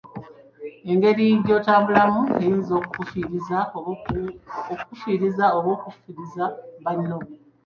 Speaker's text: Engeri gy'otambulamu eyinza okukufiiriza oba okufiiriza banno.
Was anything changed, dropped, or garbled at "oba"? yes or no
no